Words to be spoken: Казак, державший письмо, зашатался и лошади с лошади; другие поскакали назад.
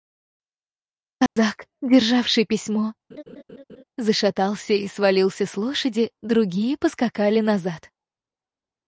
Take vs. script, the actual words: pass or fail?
fail